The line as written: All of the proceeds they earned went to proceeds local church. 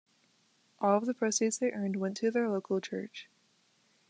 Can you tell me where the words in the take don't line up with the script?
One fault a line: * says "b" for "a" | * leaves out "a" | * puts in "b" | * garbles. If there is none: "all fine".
* says "their" for "proceeds"